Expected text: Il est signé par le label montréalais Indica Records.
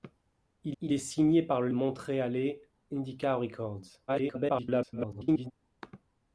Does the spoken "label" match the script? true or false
false